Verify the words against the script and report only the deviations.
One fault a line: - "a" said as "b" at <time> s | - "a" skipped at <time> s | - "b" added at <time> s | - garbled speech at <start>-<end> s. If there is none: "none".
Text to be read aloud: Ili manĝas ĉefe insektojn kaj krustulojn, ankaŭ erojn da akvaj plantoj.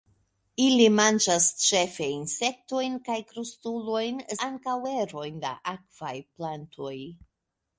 none